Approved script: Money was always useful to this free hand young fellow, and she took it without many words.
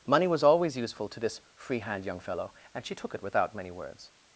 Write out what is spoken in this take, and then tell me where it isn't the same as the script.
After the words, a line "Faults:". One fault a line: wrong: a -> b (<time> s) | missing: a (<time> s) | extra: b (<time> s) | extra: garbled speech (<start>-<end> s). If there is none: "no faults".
Money was always useful to this free hand young fellow, and she took it without many words.
Faults:
no faults